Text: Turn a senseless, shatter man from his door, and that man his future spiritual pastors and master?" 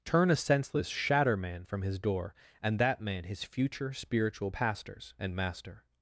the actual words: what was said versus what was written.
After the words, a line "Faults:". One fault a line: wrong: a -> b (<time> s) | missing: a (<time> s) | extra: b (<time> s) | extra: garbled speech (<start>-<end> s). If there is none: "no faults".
Turn a senseless, shatter man from his door, and that man his future spiritual pastors and master?"
Faults:
no faults